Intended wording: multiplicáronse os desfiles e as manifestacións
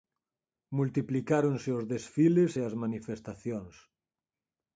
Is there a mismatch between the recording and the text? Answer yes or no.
no